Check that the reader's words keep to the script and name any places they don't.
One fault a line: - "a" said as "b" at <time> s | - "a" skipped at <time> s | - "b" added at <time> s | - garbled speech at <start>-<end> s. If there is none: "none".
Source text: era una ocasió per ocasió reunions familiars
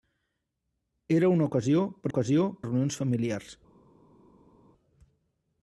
none